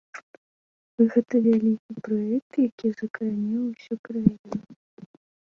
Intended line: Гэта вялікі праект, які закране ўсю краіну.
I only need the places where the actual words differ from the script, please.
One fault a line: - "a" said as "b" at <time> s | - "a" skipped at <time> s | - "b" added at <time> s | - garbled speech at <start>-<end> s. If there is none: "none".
none